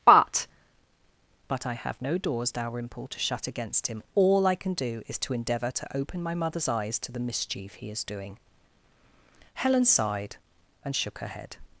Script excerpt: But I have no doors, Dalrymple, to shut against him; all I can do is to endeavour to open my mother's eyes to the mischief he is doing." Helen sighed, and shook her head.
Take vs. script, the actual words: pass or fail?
fail